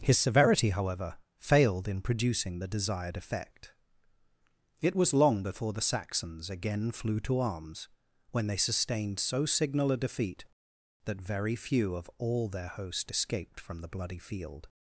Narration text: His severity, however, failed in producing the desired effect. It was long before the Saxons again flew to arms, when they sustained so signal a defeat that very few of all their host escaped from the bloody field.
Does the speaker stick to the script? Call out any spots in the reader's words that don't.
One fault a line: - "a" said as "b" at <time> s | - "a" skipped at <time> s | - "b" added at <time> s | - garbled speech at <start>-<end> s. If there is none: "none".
none